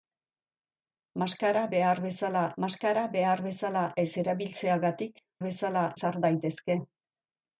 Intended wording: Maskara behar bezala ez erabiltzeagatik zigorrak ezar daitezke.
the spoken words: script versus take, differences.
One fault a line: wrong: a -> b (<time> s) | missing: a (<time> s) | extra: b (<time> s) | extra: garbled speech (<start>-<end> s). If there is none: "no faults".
extra: maskara behar bezala (2.6 s)
wrong: zigorrak -> bezala (5.5 s)